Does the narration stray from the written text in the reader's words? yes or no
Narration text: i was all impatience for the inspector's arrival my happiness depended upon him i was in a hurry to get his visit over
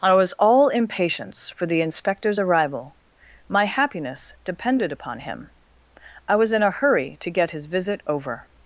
no